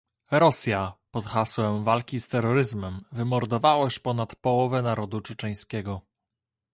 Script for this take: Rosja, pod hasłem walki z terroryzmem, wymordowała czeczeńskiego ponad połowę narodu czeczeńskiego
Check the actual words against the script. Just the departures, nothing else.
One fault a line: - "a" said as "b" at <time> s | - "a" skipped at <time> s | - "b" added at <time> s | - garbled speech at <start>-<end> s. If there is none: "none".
- "czeczeńskiego" said as "już" at 3.8 s